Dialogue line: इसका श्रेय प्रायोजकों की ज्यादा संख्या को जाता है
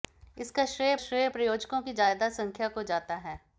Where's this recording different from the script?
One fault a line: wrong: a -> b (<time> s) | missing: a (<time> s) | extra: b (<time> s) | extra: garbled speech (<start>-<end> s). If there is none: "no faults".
extra: श्रेय (1.0 s)